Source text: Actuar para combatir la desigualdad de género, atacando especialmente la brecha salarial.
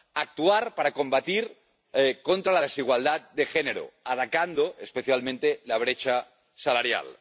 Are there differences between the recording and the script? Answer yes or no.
no